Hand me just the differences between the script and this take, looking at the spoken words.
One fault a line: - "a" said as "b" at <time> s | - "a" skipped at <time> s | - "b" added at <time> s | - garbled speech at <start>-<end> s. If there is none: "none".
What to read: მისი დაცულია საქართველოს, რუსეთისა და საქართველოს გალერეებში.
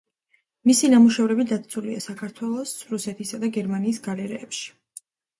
- "ნამუშევრები" added at 0.9 s
- "საქართველოს" said as "გერმანიის" at 3.6 s